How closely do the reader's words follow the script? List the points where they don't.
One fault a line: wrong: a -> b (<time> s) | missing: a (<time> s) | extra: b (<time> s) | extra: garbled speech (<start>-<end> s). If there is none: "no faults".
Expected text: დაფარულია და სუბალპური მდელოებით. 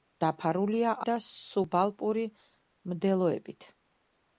no faults